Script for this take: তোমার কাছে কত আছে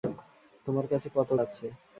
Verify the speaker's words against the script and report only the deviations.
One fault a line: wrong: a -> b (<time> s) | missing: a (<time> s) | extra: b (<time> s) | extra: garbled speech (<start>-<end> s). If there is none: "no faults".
no faults